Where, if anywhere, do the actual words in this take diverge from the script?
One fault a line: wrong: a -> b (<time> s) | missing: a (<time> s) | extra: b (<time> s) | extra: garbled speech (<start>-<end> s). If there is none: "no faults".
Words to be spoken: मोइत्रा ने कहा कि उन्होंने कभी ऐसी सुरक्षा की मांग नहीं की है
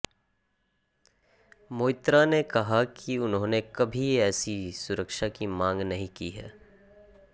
no faults